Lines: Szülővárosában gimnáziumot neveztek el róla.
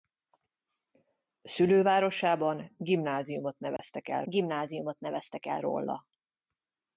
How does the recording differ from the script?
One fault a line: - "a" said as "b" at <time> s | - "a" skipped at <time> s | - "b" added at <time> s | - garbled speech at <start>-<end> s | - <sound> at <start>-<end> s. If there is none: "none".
- dropout at 3.8-3.8 s
- "gimnáziumot neveztek el" added at 4.2 s